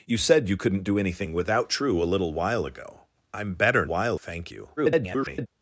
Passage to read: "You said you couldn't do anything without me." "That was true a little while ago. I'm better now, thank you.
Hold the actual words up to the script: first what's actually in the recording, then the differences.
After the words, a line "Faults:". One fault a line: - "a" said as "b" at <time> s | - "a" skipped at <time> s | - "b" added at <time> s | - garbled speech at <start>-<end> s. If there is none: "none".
"You said you couldn't do anything without true a little while ago. I'm better while, thank you. [garbled]
Faults:
- "me That was" skipped at 1.7 s
- "now" said as "while" at 3.9 s
- garbled speech at 4.8-5.5 s